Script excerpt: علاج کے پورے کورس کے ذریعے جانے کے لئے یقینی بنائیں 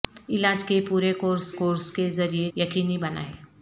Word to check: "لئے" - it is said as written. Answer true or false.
false